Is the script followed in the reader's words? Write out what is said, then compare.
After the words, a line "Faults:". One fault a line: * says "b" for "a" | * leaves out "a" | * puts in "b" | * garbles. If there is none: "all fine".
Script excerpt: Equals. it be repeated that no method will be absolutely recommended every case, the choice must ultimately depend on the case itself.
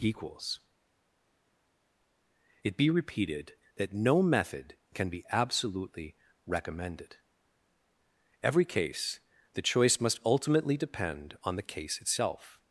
Equals. it be repeated that no method can be absolutely recommended every case, the choice must ultimately depend on the case itself.
Faults:
* says "can" for "will"